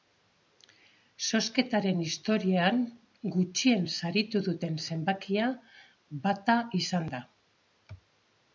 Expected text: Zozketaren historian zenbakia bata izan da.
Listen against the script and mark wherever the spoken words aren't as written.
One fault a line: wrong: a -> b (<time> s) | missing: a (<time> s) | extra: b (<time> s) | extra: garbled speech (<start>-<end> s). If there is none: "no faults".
extra: gutxien saritu duten (3.4 s)